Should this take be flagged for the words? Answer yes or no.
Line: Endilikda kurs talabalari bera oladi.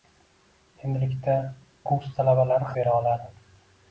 no